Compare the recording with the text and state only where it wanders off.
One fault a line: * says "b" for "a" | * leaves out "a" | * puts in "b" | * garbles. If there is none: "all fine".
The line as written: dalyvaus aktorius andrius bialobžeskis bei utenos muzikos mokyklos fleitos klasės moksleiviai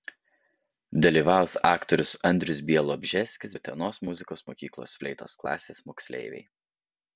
* leaves out "bei"